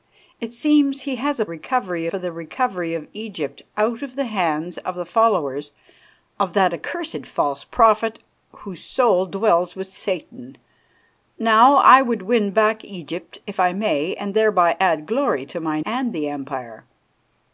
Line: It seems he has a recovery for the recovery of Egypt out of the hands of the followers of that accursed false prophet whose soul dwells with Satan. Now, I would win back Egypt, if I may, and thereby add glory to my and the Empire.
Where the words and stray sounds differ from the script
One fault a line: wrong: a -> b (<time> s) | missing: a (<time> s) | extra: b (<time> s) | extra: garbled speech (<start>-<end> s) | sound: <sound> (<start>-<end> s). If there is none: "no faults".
no faults